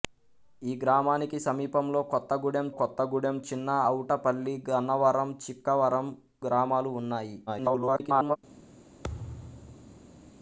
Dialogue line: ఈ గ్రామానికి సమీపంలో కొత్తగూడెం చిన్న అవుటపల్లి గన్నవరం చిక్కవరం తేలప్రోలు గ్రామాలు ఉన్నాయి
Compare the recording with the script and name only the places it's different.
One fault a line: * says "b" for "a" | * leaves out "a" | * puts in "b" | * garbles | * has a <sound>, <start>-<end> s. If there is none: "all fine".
* puts in "కొత్తగూడెం"
* leaves out "తేలప్రోలు"
* garbles
* has a thud, 9.0-10.3 s